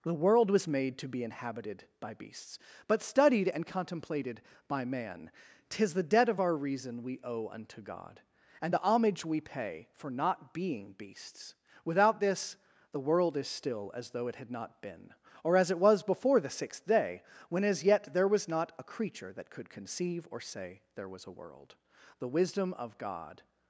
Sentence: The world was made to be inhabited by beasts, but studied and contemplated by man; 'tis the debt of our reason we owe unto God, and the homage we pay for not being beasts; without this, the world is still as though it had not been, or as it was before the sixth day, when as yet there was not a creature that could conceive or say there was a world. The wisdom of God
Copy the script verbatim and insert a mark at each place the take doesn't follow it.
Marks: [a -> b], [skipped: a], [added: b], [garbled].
The world was made to be inhabited by beasts, but studied and contemplated by man; 'tis the debt of our reason we owe unto God, and the homage we pay for not being beasts; without this, the world is still as though it had not been, or as it was before the sixth day, when as yet there was not a creature that could conceive or say there was a world. The wisdom of God